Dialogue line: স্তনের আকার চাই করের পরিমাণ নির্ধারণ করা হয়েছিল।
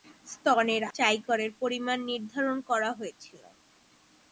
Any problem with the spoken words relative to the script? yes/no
yes